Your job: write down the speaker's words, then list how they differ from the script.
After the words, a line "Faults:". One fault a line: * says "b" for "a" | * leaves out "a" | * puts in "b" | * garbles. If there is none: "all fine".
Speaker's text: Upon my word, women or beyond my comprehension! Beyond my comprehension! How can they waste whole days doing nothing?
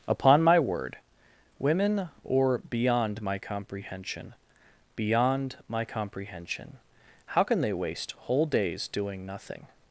Upon my word, women or beyond my comprehension! Beyond my comprehension! How can they waste whole days doing nothing?
Faults:
all fine